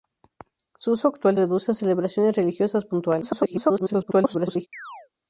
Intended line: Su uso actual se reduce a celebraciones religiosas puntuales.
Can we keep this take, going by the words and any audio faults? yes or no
no